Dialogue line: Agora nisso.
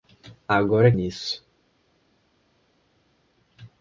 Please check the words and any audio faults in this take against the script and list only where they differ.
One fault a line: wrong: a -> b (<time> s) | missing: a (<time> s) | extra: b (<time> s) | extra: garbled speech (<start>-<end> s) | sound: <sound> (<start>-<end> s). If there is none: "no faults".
no faults